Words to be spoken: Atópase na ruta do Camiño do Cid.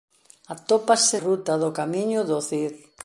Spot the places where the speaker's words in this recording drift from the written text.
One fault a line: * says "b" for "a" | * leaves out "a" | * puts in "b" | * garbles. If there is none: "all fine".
* leaves out "na"